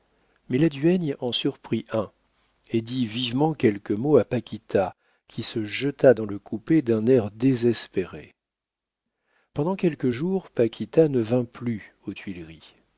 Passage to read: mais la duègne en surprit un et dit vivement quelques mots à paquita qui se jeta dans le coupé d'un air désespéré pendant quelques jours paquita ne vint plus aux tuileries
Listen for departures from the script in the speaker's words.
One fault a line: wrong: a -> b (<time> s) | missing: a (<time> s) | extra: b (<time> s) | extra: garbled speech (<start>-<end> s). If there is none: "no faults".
no faults